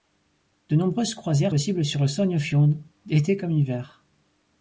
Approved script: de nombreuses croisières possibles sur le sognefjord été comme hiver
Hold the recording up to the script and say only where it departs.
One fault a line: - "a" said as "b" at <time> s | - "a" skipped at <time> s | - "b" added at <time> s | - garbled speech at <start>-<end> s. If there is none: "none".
none